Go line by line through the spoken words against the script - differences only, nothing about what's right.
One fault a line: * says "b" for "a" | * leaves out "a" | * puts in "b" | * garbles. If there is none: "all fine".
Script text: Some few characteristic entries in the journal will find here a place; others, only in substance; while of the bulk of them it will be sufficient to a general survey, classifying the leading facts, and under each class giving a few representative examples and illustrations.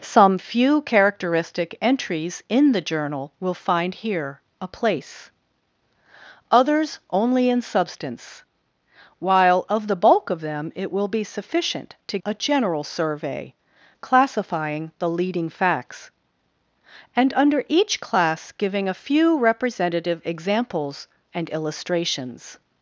all fine